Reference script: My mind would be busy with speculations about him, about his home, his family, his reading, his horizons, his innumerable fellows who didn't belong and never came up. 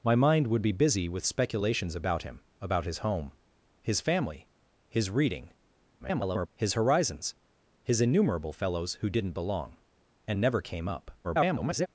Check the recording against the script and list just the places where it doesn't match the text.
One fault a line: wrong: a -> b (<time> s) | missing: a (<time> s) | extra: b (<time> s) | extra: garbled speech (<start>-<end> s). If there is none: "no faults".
extra: garbled speech (6.0-6.5 s)
extra: garbled speech (11.2-11.9 s)